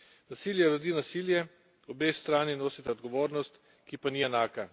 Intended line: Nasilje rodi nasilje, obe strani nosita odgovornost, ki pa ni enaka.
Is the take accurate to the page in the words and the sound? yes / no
yes